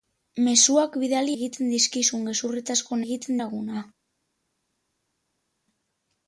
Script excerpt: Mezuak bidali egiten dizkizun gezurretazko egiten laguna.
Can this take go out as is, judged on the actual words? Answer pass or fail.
pass